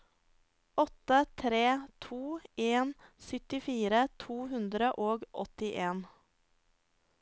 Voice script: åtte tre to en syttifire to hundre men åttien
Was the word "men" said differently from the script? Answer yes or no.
yes